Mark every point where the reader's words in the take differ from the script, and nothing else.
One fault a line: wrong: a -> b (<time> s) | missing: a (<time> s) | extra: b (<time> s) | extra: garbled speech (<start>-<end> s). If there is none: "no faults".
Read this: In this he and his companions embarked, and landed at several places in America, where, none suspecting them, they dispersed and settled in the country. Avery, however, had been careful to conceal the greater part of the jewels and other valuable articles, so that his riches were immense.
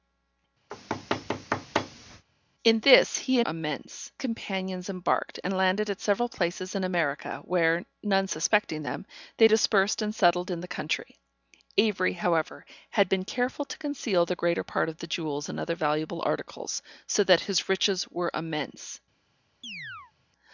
wrong: his -> immense (3.4 s)